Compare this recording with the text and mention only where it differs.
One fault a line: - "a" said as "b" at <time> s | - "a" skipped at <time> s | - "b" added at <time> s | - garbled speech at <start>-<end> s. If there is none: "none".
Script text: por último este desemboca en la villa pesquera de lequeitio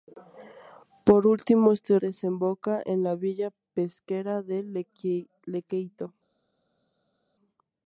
none